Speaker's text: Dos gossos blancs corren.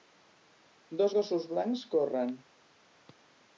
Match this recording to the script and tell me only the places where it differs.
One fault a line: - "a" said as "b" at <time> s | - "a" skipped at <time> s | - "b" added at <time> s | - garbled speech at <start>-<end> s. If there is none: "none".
none